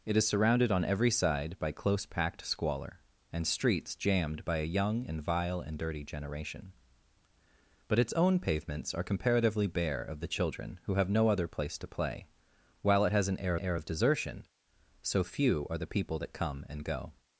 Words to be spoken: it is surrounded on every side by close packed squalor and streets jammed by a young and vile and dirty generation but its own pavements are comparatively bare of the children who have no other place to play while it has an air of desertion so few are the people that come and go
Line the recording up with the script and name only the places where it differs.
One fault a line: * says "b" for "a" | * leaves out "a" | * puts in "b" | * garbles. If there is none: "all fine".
* puts in "air"